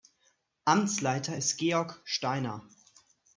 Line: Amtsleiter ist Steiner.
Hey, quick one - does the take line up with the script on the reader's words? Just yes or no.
no